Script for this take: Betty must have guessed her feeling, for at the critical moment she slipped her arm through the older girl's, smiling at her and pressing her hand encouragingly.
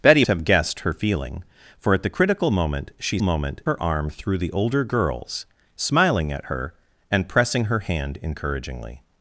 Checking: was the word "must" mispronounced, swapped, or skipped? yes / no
yes